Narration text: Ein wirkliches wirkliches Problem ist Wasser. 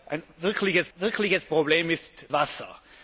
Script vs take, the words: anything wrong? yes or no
no